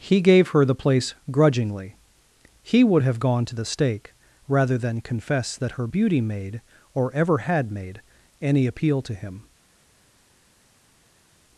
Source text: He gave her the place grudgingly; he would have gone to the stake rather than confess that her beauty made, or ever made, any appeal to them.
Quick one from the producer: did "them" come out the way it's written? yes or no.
no